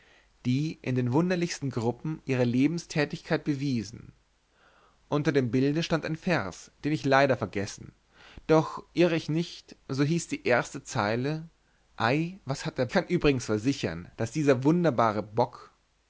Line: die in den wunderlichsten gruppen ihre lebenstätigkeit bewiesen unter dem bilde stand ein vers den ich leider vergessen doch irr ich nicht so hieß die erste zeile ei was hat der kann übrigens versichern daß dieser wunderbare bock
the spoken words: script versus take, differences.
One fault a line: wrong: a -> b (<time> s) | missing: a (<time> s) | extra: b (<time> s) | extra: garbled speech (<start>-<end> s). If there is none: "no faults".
no faults